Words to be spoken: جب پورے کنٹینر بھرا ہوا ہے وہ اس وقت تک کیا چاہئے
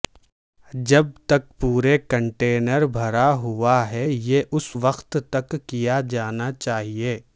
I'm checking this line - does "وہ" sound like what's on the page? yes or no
no